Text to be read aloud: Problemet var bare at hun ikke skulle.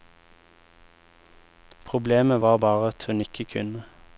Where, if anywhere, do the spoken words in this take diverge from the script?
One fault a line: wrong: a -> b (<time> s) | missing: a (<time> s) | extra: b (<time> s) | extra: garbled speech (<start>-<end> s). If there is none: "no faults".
wrong: skulle -> kunne (3.4 s)